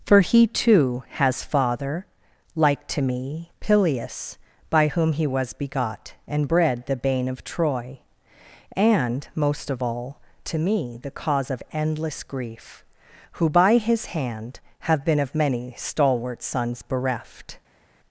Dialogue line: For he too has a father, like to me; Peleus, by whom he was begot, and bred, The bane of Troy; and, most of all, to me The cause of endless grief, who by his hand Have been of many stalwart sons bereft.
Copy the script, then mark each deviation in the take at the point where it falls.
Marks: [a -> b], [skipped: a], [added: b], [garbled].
For he too has [skipped: a] father, like to me; Peleus, by whom he was begot, and bred, The bane of Troy; and, most of all, to me The cause of endless grief, who by his hand Have been of many stalwart sons bereft.